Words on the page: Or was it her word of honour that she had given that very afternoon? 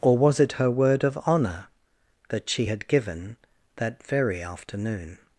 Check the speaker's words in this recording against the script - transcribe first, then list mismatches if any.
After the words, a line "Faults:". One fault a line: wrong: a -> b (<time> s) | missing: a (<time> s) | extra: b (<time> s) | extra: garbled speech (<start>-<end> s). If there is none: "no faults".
Or was it her word of honour that she had given that very afternoon?
Faults:
no faults